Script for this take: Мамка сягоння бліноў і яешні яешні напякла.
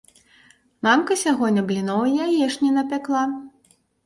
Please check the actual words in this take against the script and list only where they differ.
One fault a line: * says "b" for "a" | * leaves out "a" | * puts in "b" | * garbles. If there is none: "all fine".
* leaves out "яешні"